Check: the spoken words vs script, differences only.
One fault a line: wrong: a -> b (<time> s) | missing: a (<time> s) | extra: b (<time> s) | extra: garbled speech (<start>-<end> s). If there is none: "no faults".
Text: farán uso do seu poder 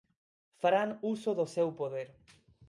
no faults